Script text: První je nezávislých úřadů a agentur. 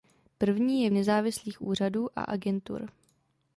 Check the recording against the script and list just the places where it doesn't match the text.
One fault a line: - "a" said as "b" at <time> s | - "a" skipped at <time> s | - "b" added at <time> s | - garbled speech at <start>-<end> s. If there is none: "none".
none